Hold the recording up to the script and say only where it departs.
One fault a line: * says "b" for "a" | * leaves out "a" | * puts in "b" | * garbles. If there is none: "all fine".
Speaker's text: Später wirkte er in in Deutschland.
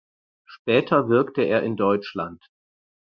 * leaves out "in"